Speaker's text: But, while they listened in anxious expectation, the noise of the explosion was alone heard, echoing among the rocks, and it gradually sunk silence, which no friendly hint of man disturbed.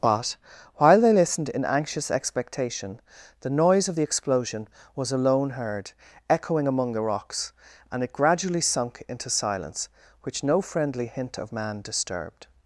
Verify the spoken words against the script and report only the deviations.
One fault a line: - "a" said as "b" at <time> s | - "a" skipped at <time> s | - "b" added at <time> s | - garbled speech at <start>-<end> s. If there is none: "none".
- "into" added at 9.1 s